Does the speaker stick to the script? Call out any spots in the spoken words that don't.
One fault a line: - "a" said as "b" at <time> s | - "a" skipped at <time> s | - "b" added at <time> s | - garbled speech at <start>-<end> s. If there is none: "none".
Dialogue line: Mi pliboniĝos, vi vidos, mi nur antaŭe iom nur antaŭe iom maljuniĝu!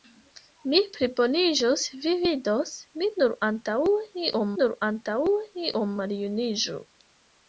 none